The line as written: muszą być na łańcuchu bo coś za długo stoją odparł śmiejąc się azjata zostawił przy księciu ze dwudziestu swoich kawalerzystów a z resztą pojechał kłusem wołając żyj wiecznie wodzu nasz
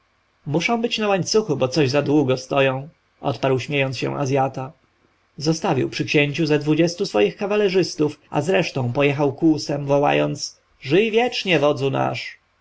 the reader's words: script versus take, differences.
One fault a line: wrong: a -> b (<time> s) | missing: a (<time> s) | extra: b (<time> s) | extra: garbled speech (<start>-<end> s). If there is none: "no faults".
no faults